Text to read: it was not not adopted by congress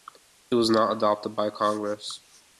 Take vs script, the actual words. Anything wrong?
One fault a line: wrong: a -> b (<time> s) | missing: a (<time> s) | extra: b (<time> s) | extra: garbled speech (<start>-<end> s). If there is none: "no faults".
missing: not (1.0 s)